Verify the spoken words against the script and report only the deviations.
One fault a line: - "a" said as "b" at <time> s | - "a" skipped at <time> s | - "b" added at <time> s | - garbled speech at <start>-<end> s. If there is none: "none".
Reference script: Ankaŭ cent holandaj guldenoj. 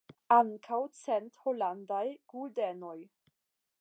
none